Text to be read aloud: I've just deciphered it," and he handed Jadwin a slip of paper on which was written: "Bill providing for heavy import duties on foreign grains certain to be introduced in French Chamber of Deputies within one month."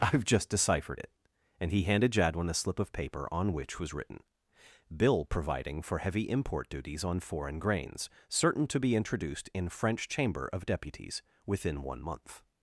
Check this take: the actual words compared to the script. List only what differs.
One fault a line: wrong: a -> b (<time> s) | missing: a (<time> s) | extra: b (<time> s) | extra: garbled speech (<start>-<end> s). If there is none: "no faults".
no faults